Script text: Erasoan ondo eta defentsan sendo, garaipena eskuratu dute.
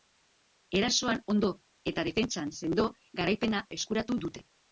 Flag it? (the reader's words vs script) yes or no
no